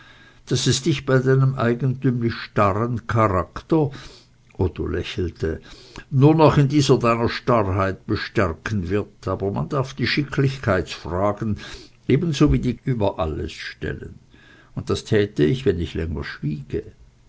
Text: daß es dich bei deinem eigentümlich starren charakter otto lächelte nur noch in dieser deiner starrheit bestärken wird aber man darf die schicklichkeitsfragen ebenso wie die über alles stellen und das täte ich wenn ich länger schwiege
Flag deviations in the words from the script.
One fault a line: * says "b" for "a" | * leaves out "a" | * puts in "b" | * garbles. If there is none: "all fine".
all fine